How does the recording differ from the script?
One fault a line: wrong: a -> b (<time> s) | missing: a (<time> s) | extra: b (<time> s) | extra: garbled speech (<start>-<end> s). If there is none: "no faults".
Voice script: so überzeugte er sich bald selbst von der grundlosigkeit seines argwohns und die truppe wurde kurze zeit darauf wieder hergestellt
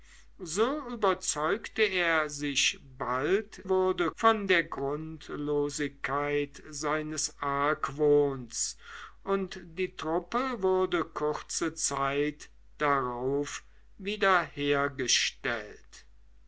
wrong: selbst -> wurde (3.7 s)